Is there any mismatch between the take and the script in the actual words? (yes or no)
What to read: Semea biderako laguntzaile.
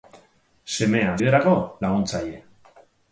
no